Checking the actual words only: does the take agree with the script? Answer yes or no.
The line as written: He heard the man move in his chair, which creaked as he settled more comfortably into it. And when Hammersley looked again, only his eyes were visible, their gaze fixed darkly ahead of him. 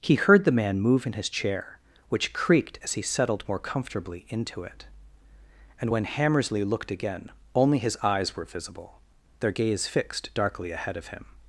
yes